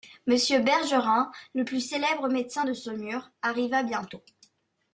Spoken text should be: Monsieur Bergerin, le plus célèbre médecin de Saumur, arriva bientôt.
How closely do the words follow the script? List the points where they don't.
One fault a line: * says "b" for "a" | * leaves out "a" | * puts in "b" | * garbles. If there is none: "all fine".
all fine